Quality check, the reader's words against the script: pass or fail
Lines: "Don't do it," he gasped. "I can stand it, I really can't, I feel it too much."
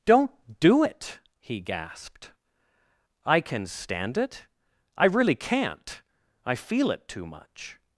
pass